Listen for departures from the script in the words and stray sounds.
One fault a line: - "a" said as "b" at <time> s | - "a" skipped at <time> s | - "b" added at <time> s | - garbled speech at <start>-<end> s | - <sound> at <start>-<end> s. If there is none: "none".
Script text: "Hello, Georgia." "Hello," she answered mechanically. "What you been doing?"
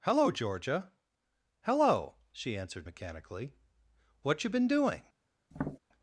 - tap at 5.5-5.8 s